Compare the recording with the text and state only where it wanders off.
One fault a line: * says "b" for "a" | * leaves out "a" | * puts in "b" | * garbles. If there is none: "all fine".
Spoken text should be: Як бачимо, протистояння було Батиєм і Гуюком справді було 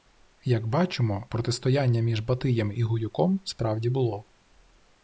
* says "між" for "було"